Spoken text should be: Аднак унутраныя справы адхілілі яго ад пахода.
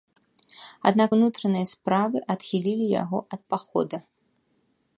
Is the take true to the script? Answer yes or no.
yes